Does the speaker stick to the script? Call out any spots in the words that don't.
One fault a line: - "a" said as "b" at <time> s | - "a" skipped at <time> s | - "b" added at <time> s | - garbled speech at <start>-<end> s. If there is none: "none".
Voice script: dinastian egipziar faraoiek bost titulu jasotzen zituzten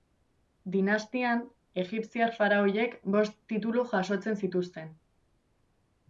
none